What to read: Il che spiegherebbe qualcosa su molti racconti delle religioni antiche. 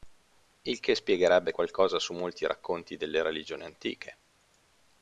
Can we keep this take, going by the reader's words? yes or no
yes